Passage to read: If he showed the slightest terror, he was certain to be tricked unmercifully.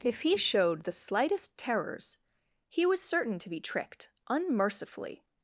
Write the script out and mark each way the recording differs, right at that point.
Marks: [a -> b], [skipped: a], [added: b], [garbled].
If he showed the slightest [terror, -> terrors] he was certain to be tricked unmercifully.